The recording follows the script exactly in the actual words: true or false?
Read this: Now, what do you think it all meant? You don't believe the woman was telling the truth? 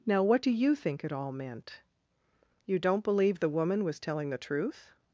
true